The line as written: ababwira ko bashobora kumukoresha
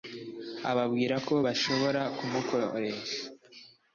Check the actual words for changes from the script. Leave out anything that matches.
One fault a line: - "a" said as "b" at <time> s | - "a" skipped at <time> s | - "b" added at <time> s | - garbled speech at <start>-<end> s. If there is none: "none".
none